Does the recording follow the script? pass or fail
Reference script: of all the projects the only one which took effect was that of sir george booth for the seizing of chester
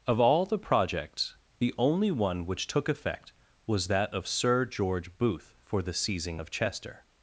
pass